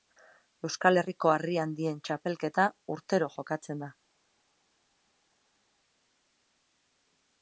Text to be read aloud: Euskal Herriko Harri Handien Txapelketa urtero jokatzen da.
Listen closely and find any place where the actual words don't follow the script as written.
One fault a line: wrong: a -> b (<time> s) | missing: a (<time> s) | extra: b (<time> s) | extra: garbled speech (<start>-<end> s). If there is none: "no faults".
no faults